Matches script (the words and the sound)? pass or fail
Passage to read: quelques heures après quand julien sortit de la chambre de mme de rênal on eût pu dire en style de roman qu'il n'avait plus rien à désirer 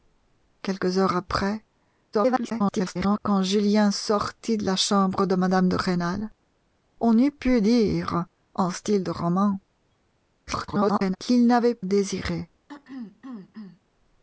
fail